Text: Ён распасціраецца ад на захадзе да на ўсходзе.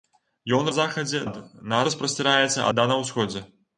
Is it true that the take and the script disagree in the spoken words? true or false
true